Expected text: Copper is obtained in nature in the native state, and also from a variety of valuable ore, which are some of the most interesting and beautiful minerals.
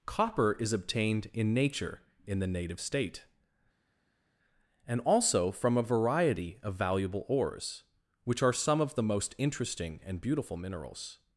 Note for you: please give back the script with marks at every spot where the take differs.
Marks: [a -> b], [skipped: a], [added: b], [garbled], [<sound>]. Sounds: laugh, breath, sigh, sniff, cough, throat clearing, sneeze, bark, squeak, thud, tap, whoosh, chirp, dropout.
Copper is obtained in nature in the native state, and also from a variety of valuable [ore, -> ores] which are some of the most interesting and beautiful minerals.